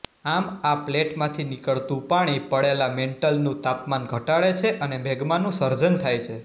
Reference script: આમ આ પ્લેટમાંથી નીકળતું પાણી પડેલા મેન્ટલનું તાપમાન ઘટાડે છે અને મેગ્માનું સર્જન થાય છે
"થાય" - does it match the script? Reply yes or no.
yes